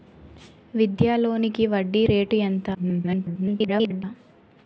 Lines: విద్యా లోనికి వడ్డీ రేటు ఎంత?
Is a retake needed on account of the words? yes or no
yes